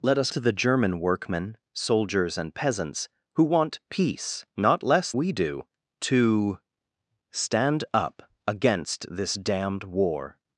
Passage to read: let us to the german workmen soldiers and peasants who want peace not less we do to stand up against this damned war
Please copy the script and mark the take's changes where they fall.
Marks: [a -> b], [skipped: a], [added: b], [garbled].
let us to the german workmen soldiers and peasants who want peace not less we do to stand up against this damned war